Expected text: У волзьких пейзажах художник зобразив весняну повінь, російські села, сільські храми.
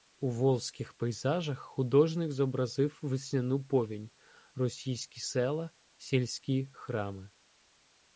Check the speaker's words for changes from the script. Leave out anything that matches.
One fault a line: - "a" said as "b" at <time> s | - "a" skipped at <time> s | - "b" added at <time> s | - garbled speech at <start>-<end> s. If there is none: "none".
none